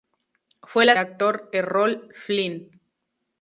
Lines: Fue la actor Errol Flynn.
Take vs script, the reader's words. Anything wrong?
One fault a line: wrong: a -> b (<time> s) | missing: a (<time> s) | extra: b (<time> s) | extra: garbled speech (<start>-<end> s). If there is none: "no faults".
no faults